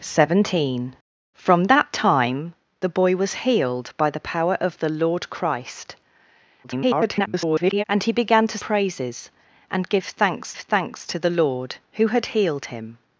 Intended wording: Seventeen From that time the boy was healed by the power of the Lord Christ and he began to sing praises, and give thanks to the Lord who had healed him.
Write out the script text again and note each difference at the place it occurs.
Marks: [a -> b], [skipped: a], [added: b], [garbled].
Seventeen From that time the boy was healed by the power of the Lord Christ [garbled] and he began to [skipped: sing] praises, and give thanks [added: thanks] to the Lord who had healed him.